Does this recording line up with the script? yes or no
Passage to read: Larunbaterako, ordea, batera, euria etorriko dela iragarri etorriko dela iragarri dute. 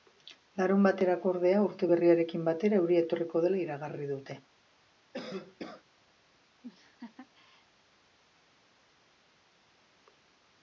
no